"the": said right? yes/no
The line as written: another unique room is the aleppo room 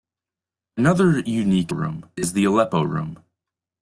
yes